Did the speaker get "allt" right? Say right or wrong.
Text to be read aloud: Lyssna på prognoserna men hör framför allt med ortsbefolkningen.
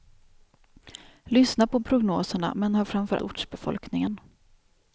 wrong